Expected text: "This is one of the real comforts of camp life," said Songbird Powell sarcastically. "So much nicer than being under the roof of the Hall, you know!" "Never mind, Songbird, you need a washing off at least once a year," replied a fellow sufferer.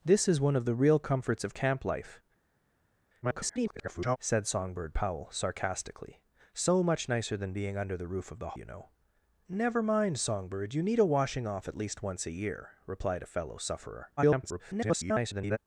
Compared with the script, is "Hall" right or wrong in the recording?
wrong